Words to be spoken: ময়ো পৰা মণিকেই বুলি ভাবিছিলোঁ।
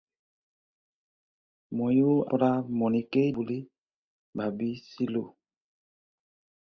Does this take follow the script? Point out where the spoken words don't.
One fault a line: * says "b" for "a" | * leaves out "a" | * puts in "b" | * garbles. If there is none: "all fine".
all fine